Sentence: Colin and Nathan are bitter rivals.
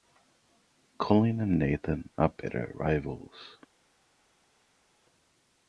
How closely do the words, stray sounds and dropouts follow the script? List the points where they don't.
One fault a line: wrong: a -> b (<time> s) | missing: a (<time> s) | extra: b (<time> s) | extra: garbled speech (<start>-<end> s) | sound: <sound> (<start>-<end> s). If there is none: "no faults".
no faults